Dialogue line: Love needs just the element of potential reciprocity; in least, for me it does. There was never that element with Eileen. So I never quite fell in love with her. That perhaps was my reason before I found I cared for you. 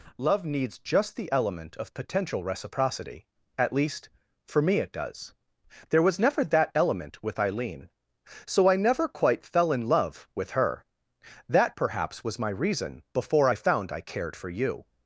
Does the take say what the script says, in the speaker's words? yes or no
no